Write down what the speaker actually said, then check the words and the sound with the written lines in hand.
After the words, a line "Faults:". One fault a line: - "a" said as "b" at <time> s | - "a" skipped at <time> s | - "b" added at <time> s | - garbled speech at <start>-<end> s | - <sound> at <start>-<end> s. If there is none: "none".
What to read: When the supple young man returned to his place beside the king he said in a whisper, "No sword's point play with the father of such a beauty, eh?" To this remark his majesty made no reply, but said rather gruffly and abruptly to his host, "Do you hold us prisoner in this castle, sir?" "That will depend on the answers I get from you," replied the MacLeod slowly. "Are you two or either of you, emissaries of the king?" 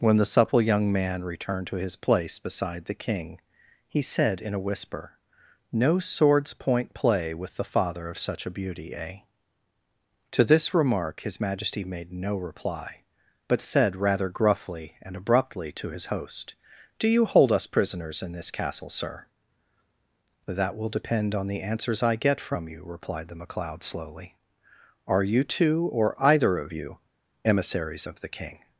When the supple young man returned to his place beside the king he said in a whisper, "No sword's point play with the father of such a beauty, eh?" To this remark his majesty made no reply, but said rather gruffly and abruptly to his host, "Do you hold us prisoners in this castle, sir?" "That will depend on the answers I get from you," replied the MacLeod slowly. "Are you two or either of you, emissaries of the king?"
Faults:
- "prisoner" said as "prisoners" at 17.7 s